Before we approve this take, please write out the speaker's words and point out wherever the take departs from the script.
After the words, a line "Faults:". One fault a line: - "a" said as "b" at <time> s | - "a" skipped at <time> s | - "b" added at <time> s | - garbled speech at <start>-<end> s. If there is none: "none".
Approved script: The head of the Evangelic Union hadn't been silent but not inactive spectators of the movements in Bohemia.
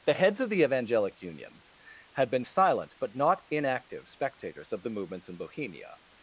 The heads of the Evangelic Union had been silent but not inactive spectators of the movements in Bohemia.
Faults:
- "head" said as "heads" at 0.1 s
- "hadn't" said as "had" at 2.1 s